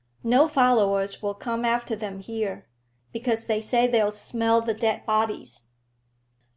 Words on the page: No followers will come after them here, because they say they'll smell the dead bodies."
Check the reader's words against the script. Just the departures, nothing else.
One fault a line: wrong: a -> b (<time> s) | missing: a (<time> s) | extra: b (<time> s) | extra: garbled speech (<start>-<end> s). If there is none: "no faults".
no faults